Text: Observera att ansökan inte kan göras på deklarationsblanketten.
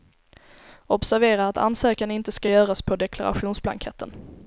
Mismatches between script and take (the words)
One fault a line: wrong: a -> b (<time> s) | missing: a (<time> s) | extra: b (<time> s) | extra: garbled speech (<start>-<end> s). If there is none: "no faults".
wrong: kan -> ska (2.3 s)